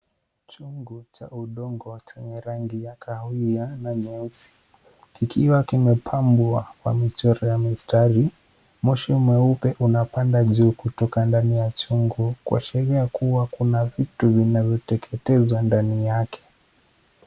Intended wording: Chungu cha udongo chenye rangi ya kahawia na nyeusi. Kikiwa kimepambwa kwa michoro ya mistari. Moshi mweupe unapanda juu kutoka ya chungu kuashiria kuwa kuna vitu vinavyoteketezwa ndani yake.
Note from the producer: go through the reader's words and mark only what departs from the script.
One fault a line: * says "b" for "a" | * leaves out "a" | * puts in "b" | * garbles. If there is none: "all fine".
* puts in "ndani"